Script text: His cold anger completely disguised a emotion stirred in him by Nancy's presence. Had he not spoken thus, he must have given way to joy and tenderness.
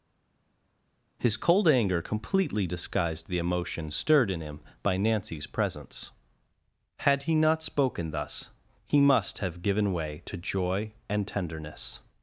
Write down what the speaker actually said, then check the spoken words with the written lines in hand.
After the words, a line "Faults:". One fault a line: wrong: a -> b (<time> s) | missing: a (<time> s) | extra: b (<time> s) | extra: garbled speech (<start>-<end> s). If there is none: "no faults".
His cold anger completely disguised the emotion stirred in him by Nancy's presence. Had he not spoken thus, he must have given way to joy and tenderness.
Faults:
wrong: a -> the (3.3 s)